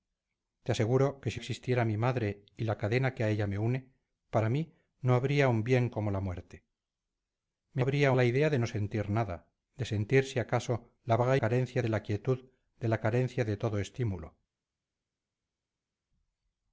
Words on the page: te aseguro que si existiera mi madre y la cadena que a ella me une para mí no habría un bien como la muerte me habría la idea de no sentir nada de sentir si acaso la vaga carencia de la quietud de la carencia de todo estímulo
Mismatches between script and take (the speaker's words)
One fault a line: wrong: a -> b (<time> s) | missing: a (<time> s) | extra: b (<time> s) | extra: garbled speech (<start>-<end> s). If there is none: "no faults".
no faults